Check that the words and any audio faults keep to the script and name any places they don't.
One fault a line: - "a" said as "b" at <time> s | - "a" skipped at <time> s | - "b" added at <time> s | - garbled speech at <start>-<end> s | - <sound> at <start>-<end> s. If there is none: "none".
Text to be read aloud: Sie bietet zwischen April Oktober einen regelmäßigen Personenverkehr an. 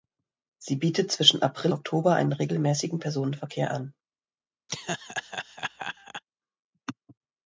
- laugh at 4.7-6.2 s